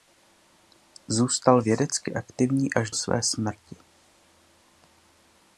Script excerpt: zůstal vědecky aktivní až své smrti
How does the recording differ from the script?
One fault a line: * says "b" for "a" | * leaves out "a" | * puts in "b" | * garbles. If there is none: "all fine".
all fine